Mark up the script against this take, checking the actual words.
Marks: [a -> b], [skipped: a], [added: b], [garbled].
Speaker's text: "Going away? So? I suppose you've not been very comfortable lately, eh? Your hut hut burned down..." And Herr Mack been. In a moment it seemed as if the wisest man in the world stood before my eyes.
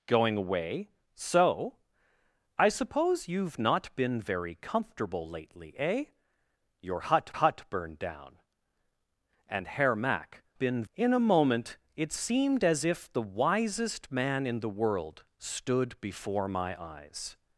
"Going away? So? I suppose you've not been very comfortable lately, eh? Your hut hut burned down..." And Herr Mack been. In a moment it seemed as if the wisest man in the world stood before my eyes.